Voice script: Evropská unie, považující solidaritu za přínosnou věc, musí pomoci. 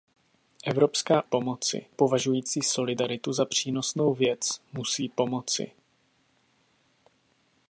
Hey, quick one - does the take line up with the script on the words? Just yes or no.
no